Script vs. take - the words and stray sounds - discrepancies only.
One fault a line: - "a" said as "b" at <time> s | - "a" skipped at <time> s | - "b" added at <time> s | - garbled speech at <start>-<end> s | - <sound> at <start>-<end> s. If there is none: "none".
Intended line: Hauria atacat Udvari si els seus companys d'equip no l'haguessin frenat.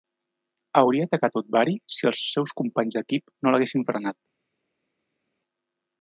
none